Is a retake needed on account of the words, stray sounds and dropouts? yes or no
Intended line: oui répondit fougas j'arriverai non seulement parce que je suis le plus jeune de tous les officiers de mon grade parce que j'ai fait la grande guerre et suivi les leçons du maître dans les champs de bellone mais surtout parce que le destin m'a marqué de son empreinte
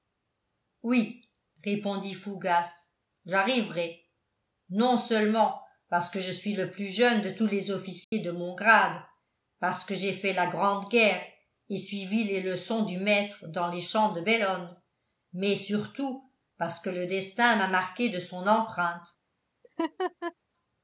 yes